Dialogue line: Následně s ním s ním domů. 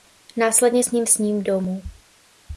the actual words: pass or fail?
pass